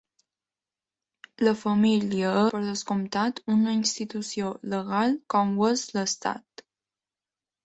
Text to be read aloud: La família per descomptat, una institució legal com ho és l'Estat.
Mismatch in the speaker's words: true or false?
false